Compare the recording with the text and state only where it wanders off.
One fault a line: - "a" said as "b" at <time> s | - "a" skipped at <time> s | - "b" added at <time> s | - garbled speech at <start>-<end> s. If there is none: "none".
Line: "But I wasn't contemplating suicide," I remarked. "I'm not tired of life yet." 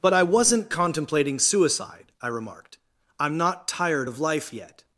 none